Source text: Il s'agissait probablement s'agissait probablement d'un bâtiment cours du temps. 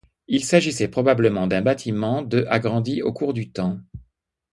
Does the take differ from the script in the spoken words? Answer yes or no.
yes